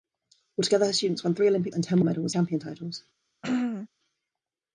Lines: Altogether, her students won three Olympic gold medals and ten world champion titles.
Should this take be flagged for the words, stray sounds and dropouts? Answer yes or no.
yes